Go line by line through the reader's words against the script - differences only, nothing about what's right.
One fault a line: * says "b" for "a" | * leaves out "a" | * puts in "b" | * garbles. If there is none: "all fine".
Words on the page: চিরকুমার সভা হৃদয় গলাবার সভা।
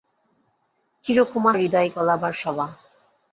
* leaves out "সভা"